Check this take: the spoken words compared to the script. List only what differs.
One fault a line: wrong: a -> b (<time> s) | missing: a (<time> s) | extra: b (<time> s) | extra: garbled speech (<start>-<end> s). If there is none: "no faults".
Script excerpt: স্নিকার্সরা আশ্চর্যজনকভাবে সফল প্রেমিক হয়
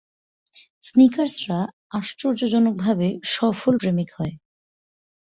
no faults